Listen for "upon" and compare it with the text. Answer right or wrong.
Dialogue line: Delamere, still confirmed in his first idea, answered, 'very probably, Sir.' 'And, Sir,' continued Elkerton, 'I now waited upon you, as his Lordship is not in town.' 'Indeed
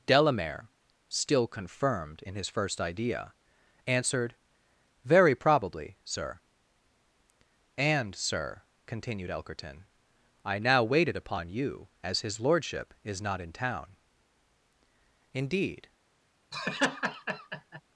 right